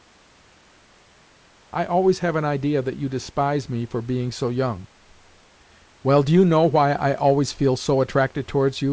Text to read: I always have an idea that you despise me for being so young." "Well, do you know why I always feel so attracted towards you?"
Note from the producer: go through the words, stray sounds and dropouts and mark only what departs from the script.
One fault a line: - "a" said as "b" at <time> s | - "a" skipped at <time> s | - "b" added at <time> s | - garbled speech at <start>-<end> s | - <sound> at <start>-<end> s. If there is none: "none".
none